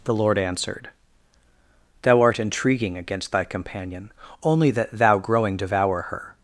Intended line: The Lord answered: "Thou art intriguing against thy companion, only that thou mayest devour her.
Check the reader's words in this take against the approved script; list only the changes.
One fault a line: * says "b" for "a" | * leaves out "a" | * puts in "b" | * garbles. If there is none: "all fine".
* says "growing" for "mayest"